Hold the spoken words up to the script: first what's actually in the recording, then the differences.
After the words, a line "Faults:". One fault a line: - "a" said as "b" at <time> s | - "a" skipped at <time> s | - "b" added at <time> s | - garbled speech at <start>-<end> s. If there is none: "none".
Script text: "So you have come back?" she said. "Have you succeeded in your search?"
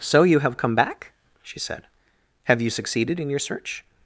"So you have come back?" she said. "Have you succeeded in your search?"
Faults:
none